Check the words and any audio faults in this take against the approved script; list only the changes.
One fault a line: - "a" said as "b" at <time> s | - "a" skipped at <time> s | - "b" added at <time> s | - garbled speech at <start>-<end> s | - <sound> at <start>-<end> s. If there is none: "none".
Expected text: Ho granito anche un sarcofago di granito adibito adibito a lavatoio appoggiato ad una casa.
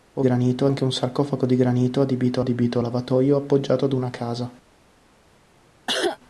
- cough at 5.9-6.2 s